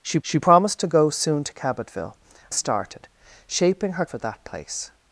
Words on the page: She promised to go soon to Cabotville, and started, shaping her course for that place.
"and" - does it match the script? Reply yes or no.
no